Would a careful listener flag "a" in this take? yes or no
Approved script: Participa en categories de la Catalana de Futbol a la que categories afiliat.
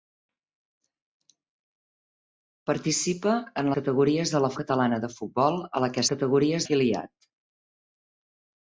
no